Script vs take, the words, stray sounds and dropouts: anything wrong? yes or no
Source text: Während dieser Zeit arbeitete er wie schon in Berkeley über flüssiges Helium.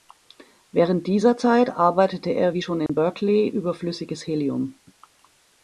yes